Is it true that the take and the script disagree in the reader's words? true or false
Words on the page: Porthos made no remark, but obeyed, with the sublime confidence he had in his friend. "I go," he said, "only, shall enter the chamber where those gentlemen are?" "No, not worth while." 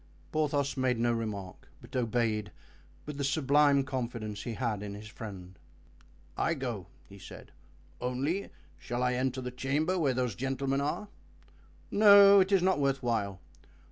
true